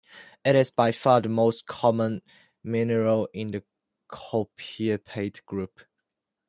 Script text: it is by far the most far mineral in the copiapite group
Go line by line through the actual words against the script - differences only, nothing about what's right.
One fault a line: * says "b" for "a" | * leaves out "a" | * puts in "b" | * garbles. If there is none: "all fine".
* says "common" for "far"